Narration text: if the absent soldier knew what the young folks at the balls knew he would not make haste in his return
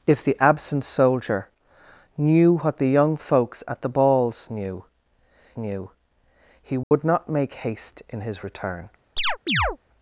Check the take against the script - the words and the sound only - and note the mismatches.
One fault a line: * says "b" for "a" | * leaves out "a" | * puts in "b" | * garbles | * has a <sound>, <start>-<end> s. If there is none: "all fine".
* puts in "knew"
* has a dropout, 6.8-6.9 s
* has a chirp, 9.2-9.8 s